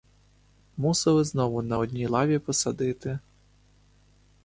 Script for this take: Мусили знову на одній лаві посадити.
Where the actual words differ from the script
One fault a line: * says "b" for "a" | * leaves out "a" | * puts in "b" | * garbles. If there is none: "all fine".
all fine